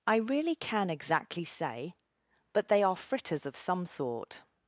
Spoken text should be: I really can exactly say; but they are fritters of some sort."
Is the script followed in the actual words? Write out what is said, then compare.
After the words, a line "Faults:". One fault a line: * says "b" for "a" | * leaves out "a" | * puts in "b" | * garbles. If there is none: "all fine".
I really can exactly say; but they are fritters of some sort."
Faults:
all fine